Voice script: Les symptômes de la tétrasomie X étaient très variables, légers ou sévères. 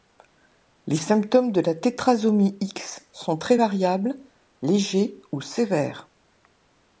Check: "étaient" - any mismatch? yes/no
yes